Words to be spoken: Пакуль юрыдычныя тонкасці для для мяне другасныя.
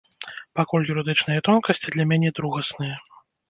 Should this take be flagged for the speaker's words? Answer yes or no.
yes